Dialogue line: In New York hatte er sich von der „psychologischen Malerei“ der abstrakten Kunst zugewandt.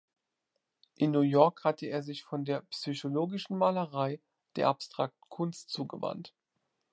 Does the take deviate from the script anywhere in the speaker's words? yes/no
no